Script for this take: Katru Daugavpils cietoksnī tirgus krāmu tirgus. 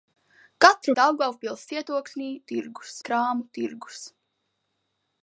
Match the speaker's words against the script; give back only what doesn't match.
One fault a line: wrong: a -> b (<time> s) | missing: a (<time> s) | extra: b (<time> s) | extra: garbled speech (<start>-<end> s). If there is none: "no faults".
no faults